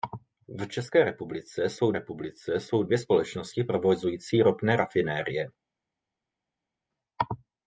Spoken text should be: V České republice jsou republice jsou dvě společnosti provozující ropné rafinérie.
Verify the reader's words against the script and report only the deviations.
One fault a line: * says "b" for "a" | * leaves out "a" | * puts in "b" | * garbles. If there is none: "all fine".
all fine